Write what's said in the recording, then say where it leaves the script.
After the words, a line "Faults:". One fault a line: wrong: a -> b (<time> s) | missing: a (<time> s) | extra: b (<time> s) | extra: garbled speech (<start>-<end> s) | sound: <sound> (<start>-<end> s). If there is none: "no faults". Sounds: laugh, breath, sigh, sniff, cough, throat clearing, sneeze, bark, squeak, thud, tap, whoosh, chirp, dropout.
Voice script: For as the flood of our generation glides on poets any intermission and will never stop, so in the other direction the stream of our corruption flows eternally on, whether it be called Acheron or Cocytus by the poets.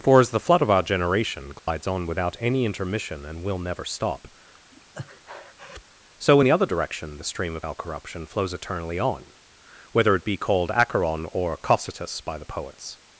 For as the flood of our generation glides on without any intermission and will never stop, so in the other direction the stream of our corruption flows eternally on, whether it be called Acheron or Cocytus by the poets.
Faults:
sound: dropout (1.6-1.7 s)
wrong: poets -> without (2.1 s)
sound: breath (4.7-5.8 s)